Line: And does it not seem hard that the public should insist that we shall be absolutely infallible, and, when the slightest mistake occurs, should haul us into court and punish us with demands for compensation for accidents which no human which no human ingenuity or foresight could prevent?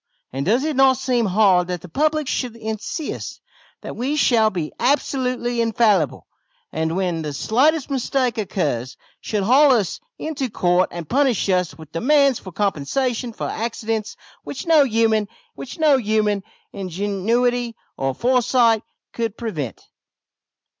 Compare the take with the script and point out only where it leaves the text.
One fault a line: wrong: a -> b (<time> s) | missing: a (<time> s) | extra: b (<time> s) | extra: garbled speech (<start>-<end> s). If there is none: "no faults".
no faults